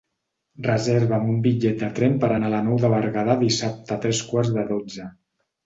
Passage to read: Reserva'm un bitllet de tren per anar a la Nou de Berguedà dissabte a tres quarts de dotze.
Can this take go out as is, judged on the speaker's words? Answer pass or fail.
pass